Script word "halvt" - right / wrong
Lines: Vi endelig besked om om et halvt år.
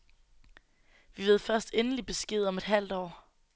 right